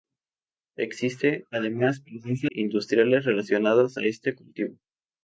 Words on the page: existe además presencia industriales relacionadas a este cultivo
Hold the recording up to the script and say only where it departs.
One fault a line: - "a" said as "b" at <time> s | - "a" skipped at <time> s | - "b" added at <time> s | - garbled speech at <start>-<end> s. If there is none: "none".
none